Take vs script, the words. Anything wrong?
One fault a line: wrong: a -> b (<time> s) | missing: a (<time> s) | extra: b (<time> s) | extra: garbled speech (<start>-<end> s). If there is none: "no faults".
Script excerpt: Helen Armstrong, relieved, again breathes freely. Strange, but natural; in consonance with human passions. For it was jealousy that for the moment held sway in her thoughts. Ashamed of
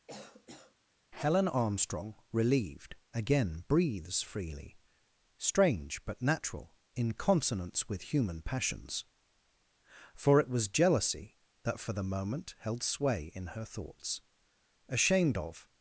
no faults